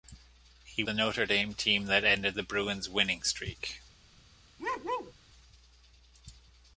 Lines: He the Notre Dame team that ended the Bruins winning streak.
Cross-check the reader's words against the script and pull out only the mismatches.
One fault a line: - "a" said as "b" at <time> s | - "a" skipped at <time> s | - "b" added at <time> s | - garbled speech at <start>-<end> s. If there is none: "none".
none